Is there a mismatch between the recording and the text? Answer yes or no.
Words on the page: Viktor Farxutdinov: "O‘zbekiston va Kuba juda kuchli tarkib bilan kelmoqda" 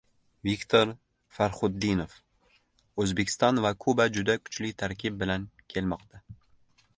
no